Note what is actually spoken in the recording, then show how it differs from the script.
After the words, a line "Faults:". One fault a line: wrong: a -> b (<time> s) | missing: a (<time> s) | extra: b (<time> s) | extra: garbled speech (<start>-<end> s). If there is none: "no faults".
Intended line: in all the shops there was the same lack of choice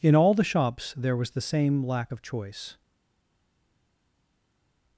in all the shops there was the same lack of choice
Faults:
no faults